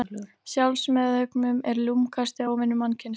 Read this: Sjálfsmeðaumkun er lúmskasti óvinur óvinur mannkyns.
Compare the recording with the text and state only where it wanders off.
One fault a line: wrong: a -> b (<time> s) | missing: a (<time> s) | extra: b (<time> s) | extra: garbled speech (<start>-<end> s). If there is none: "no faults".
missing: óvinur (2.8 s)